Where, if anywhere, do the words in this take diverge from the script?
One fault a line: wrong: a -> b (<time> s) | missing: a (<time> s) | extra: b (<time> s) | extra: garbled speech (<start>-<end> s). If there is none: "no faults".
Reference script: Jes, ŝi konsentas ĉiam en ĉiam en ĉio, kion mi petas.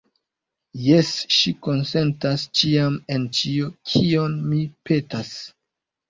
missing: ĉiam en (3.3 s)